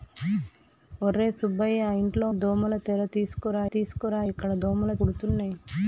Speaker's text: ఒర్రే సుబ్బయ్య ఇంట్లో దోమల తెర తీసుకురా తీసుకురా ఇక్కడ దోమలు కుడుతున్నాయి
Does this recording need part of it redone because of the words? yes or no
no